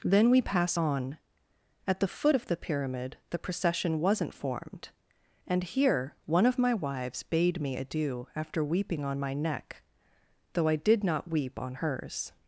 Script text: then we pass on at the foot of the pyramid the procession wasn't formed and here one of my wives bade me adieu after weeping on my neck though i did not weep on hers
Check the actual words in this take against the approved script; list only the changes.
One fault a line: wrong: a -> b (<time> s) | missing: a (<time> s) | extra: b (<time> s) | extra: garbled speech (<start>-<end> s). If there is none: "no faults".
no faults